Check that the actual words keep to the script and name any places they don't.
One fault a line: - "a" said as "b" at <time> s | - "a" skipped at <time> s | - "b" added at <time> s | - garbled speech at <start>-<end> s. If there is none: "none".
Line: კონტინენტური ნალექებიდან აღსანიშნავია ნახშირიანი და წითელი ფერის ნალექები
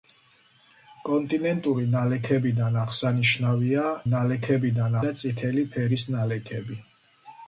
- "ნახშირიანი" said as "ნალექებიდან" at 4.1 s